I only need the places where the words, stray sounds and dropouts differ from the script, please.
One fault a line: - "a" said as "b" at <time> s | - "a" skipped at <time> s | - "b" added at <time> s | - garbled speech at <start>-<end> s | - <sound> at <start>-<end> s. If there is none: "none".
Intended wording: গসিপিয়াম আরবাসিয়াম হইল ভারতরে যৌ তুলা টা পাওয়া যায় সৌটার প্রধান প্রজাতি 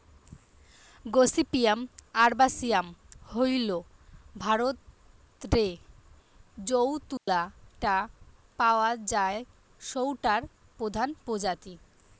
- dropout at 7.2-7.3 s